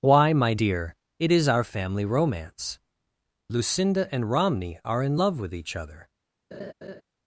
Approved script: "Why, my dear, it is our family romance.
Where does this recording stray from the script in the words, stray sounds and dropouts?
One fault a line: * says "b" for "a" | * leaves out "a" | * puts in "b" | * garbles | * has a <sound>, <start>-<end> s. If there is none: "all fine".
* puts in "Lucinda and Romney are in love with each other"
* has a laugh, 6.5-7.0 s